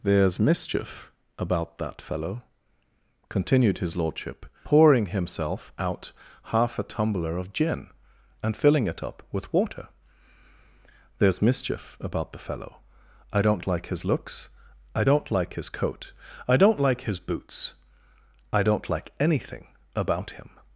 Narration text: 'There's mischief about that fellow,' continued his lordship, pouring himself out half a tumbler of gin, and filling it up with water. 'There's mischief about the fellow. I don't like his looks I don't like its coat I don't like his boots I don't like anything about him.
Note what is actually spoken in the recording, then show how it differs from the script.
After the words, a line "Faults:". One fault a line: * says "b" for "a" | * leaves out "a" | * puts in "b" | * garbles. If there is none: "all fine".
'There's mischief about that fellow,' continued his lordship, pouring himself out half a tumbler of gin, and filling it up with water. 'There's mischief about the fellow. I don't like his looks I don't like his coat I don't like his boots I don't like anything about him.
Faults:
* says "his" for "its"